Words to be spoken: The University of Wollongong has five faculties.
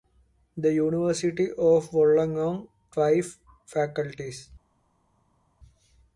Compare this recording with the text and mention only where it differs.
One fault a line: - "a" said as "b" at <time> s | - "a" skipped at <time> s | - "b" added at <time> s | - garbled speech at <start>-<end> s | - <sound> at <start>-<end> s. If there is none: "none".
- "has" skipped at 2.7 s